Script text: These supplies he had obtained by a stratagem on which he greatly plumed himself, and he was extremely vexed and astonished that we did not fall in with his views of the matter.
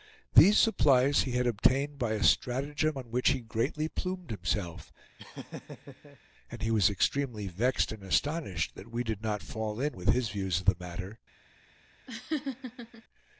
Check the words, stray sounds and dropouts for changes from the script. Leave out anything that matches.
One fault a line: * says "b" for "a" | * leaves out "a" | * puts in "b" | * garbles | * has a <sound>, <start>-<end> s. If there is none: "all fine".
* has a laugh, 5.2-6.2 s
* has a laugh, 12.1-13.0 s